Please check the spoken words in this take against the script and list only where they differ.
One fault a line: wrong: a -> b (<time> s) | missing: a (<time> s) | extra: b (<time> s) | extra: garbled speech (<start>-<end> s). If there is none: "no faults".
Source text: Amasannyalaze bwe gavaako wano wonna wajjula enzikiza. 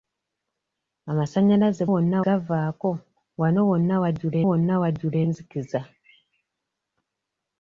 wrong: bwe -> wonna (1.9 s)
extra: wonna wajjula (4.5 s)